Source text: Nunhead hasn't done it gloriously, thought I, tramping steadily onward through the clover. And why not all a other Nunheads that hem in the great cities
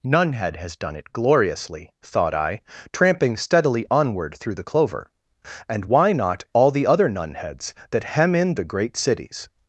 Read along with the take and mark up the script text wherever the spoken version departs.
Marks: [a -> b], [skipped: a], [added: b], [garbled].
Nunhead [hasn't -> has] done it gloriously, thought I, tramping steadily onward through the clover. And why not all [a -> the] other Nunheads that hem in the great cities